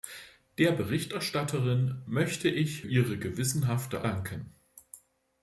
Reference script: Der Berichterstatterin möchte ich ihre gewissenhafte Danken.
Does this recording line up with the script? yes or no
yes